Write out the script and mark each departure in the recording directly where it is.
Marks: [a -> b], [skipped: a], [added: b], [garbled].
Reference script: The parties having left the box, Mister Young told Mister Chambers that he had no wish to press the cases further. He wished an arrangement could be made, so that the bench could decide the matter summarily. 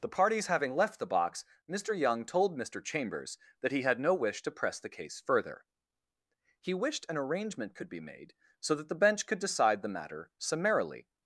The parties having left the box, Mister Young told Mister Chambers that he had no wish to press the [cases -> case] further. He wished an arrangement could be made, so that the bench could decide the matter summarily.